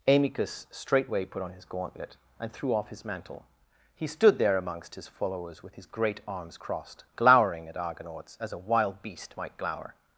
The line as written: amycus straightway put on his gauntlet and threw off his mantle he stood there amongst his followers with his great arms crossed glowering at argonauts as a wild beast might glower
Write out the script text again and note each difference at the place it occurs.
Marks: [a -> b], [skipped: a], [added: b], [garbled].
amycus straightway put on his gauntlet and threw off his mantle he stood there amongst his followers with his great arms crossed glowering at argonauts as a wild beast might glower